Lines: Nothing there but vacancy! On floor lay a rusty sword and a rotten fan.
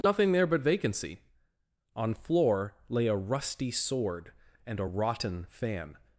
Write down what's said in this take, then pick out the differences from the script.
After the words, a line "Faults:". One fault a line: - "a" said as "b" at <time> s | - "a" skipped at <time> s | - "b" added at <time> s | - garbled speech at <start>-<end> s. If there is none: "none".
Nothing there but vacancy! On floor lay a rusty sword and a rotten fan.
Faults:
none